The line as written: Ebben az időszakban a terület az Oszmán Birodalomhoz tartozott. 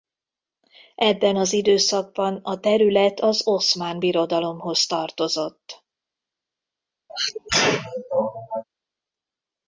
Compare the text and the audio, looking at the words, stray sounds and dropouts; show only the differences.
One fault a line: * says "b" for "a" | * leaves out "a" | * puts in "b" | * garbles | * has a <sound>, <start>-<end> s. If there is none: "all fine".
* has a sneeze, 7.1-8.6 s